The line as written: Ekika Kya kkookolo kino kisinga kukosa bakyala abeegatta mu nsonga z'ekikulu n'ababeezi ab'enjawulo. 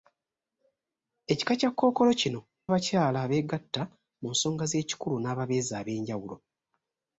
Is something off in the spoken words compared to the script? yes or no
yes